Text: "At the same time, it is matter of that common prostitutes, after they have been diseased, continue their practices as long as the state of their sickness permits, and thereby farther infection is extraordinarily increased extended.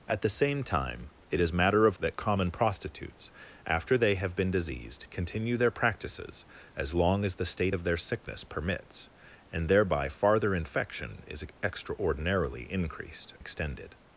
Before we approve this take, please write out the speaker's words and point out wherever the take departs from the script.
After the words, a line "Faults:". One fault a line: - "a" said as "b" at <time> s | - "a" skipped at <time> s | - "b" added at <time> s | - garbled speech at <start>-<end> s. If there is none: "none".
"At the same time, it is matter of that common prostitutes, after they have been diseased, continue their practices as long as the state of their sickness permits, and thereby farther infection is extraordinarily increased extended.
Faults:
none